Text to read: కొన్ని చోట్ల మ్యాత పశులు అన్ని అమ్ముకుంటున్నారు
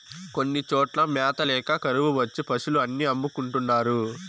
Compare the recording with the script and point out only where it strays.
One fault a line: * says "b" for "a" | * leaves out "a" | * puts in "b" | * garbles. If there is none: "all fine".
* puts in "ల్యాక కరువు వచ్చి"